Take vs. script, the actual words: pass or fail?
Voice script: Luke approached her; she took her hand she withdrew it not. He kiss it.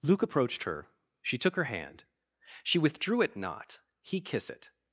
pass